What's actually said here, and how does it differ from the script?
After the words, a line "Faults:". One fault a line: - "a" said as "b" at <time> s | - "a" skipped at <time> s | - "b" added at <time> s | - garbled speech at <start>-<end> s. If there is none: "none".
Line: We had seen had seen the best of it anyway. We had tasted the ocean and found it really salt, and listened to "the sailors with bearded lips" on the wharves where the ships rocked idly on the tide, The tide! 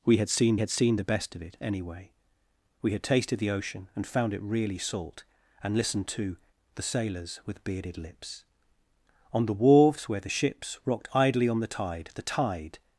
We had seen had seen the best of it anyway. We had tasted the ocean and found it really salt, and listened to "the sailors with bearded lips" on the wharves where the ships rocked idly on the tide, The tide!
Faults:
none